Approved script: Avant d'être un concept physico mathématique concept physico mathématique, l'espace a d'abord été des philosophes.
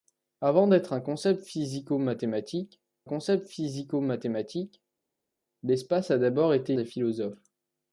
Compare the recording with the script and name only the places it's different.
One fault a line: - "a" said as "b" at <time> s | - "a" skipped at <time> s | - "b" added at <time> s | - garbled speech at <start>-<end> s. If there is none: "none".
none